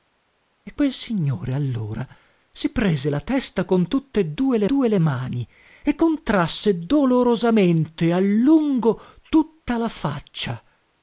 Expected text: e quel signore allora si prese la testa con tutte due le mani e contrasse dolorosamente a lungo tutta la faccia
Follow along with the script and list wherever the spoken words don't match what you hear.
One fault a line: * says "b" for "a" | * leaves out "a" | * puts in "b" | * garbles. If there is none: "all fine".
* puts in "due le"